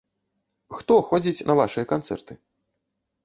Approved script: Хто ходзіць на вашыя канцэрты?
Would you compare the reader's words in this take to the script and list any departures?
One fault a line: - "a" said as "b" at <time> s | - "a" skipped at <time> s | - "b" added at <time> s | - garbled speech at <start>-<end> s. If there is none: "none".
none